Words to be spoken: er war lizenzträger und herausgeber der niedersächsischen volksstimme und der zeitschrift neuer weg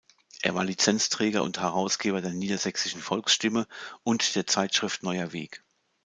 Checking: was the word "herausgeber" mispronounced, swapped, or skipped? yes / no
no